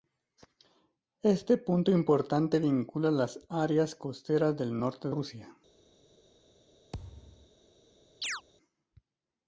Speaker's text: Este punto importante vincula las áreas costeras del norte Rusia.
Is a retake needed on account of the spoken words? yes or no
no